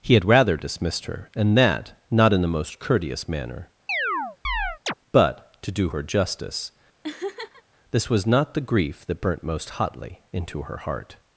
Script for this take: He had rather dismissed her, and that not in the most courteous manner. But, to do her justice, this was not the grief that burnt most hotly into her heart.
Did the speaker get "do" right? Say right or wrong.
right